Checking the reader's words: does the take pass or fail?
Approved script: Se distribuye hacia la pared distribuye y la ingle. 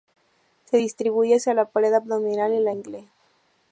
fail